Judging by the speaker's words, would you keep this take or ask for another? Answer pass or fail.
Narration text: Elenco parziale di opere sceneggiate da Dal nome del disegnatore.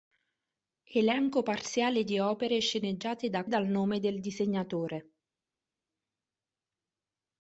pass